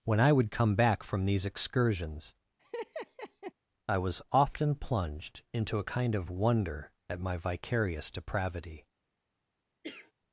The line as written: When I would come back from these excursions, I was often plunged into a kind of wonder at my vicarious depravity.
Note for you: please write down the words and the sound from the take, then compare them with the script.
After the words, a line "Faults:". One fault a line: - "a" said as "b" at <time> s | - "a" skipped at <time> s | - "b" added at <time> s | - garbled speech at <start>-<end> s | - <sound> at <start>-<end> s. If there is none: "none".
When I would come back from these excursions, I was often plunged into a kind of wonder at my vicarious depravity.
Faults:
- laugh at 2.6-3.5 s
- cough at 9.8-10.1 s